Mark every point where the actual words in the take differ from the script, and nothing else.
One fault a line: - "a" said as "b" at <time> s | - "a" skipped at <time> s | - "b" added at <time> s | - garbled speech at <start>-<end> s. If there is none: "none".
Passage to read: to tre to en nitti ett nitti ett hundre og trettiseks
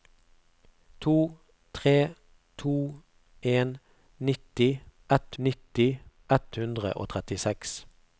none